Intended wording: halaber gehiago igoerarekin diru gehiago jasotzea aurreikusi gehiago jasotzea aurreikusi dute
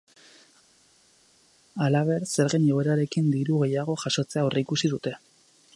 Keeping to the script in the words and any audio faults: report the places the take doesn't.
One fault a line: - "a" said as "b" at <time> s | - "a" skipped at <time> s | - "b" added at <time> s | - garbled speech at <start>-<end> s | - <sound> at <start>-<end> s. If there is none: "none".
- "gehiago" said as "zergen" at 2.3 s
- "gehiago jasotzea aurreikusi" skipped at 4.9 s